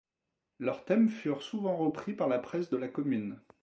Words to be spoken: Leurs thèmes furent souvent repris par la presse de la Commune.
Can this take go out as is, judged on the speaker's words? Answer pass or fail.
pass